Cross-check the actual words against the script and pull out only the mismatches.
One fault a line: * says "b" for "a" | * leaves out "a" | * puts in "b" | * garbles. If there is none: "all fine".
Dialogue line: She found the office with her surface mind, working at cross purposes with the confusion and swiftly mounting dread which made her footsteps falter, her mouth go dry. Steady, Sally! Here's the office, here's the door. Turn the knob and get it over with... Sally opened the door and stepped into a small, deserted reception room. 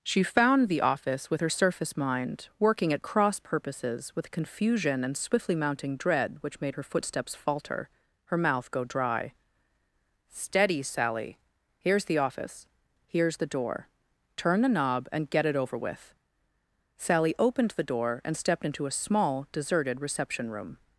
* leaves out "the"